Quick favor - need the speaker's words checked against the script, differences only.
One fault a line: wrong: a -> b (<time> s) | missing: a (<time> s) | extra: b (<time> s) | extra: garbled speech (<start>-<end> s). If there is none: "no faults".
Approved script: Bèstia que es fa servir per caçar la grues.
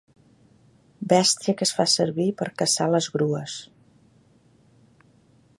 wrong: la -> les (2.9 s)